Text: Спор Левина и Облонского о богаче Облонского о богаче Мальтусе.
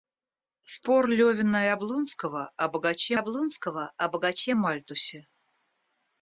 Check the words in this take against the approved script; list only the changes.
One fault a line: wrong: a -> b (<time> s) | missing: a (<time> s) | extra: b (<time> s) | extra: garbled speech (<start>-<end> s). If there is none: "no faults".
no faults